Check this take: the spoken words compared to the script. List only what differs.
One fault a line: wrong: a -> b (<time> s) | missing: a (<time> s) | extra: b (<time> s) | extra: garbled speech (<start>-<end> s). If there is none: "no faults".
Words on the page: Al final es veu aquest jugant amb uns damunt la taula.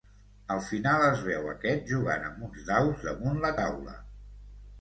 extra: daus (2.7 s)